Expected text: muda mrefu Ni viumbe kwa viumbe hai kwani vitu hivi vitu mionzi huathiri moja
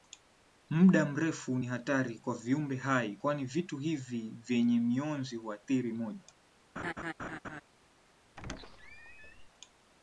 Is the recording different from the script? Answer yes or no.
yes